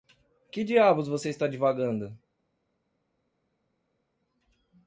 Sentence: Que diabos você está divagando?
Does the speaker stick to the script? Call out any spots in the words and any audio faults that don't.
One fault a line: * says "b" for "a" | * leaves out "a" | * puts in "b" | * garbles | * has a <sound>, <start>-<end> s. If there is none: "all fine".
all fine